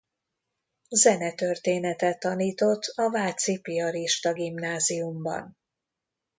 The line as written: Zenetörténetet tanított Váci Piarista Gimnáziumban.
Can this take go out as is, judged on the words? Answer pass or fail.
fail